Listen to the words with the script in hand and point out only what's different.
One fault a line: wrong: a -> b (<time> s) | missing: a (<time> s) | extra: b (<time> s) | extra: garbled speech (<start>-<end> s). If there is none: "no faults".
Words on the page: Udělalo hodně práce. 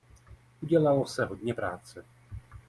extra: se (1.1 s)